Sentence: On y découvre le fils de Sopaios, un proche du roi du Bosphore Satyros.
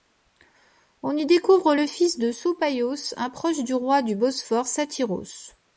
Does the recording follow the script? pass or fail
pass